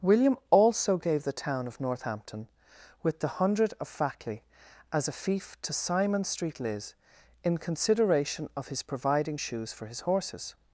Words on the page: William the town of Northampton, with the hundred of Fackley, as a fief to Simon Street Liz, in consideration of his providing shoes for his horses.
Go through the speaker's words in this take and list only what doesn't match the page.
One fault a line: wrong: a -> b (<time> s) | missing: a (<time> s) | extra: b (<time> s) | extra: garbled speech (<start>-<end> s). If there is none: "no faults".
extra: also gave (0.5 s)